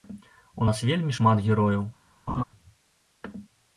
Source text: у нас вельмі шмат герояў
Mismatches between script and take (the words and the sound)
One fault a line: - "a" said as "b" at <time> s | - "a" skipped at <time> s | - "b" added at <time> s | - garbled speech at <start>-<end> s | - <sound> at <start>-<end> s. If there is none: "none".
- laugh at 2.3-2.4 s